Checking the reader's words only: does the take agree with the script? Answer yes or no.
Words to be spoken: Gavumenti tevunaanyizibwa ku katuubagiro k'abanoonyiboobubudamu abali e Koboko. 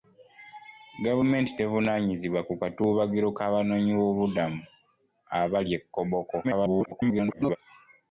no